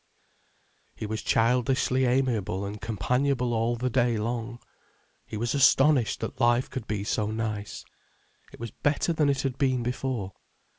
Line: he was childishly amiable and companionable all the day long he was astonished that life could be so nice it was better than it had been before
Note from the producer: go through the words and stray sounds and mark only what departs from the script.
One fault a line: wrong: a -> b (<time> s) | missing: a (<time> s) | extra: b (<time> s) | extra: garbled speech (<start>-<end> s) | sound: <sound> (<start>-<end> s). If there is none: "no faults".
no faults